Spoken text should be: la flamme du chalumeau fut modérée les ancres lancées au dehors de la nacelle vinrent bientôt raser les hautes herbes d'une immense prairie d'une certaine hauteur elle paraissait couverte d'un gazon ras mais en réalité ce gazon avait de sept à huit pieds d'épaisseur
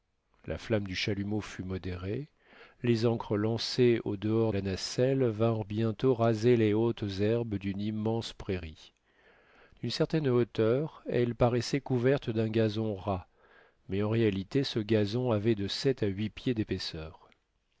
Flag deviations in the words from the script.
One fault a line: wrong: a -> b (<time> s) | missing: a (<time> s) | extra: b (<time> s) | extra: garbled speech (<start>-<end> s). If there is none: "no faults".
missing: de (4.5 s)